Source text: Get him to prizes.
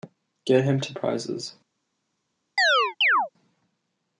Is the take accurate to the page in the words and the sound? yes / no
no